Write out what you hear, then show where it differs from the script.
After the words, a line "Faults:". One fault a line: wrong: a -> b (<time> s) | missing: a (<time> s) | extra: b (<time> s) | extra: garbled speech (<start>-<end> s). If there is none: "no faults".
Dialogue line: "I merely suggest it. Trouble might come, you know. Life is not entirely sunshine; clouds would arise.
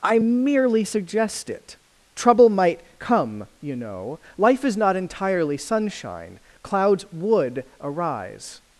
"I merely suggest it. Trouble might come, you know. Life is not entirely sunshine; clouds would arise.
Faults:
no faults